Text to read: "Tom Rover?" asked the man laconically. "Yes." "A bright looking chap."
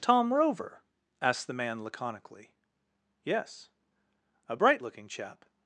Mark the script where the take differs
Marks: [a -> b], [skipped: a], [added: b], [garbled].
"Tom Rover?" asked the man laconically. "Yes." "A bright looking chap."